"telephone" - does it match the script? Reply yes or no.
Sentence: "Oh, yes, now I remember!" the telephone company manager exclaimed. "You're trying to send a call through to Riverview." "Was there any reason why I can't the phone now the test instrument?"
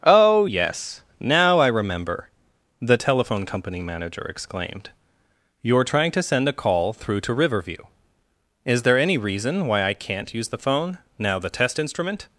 yes